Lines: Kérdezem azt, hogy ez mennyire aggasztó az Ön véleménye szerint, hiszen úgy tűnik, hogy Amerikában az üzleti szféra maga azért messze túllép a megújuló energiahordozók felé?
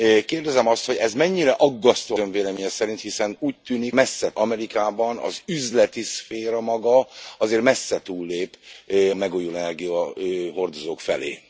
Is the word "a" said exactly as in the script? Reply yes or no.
no